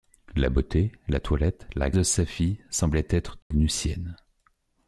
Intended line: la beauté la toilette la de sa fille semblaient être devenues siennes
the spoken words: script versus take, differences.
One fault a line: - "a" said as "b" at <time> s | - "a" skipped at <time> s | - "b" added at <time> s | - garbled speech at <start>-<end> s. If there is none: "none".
none